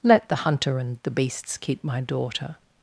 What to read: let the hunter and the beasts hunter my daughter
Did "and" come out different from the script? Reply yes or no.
no